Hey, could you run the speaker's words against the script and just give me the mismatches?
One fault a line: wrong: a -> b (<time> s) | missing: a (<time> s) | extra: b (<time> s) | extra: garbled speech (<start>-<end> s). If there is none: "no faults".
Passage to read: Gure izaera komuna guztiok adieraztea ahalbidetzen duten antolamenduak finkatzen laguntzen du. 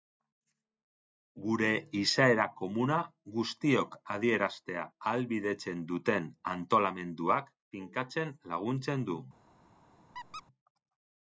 no faults